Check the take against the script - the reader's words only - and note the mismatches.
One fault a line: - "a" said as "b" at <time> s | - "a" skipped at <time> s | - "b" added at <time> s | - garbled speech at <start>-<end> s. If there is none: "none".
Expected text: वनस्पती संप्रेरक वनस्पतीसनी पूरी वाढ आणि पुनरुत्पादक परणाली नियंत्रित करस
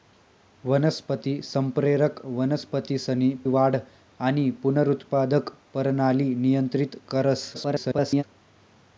- "पूरी" skipped at 3.3 s
- garbled speech at 7.5-8.2 s